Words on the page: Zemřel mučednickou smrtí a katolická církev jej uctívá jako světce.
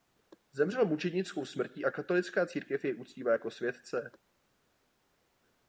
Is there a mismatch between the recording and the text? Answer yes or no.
no